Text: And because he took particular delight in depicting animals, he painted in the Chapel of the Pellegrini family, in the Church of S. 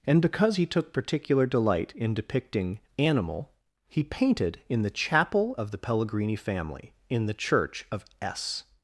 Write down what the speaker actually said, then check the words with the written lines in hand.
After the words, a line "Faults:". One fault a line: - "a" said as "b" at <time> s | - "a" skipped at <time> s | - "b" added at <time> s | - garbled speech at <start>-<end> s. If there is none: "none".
And because he took particular delight in depicting animal, he painted in the Chapel of the Pellegrini family, in the Church of S.
Faults:
- "animals" said as "animal" at 3.0 s